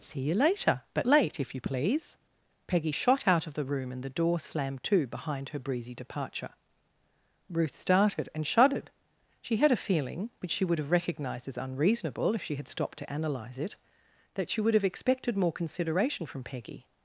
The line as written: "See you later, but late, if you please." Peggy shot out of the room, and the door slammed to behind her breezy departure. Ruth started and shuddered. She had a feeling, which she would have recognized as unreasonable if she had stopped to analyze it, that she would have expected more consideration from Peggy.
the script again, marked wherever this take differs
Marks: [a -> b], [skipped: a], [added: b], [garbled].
"See you later, but late, if you please." Peggy shot out of the room, and the door slammed to behind her breezy departure. Ruth started and shuddered. She had a feeling, which she would have recognized as unreasonable if she had stopped to analyze it, that she would have expected more consideration from Peggy.